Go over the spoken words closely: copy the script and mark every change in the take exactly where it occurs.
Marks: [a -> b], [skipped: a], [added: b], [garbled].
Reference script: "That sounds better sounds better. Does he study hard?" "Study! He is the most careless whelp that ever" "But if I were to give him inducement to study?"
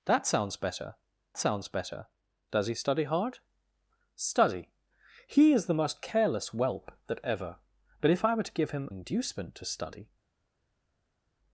"That sounds better sounds better. Does he study hard?" "Study! He is the most careless whelp that ever" "But if I were to give him inducement to study?"